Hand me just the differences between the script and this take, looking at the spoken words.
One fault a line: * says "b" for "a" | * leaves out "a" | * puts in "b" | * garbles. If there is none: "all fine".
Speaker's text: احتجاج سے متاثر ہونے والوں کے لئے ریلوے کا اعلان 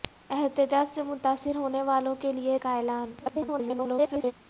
* leaves out "ریلوے"
* garbles